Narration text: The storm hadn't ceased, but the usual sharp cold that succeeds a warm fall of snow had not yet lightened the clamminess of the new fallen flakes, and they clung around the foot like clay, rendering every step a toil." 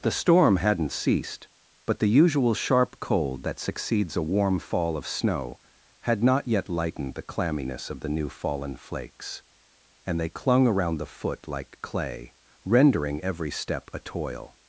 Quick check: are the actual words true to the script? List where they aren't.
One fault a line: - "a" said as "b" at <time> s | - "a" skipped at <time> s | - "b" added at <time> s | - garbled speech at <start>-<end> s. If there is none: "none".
none